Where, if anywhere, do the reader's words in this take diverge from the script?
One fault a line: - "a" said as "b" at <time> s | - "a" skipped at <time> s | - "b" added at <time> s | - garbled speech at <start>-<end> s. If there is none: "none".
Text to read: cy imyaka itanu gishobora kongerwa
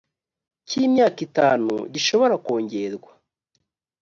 none